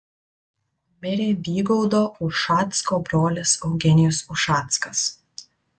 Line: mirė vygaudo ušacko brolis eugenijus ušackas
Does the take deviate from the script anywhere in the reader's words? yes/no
no